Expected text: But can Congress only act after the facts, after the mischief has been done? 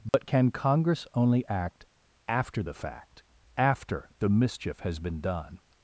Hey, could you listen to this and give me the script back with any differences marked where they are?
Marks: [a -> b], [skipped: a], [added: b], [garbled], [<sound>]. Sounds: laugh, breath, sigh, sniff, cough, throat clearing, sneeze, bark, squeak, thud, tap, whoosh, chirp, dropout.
But [dropout] can Congress only act after the [facts, -> fact] after the mischief has been done?